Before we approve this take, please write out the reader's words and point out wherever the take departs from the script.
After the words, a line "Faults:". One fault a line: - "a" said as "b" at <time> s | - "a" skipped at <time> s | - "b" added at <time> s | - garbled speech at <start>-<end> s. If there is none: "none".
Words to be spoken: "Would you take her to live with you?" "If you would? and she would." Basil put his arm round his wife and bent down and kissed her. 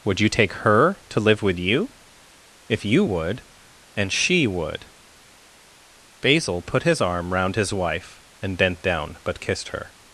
"Would you take her to live with you?" "If you would? and she would." Basil put his arm round his wife and bent down but kissed her.
Faults:
- "and" said as "but" at 9.2 s